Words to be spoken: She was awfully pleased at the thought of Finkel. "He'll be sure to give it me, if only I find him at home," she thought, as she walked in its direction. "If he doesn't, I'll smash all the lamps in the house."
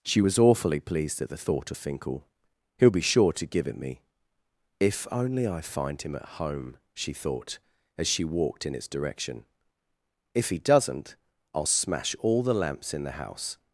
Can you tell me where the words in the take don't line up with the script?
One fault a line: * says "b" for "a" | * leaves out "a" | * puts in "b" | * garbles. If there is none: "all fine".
all fine